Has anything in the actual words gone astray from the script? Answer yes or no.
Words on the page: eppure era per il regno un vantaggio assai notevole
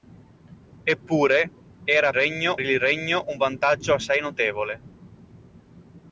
yes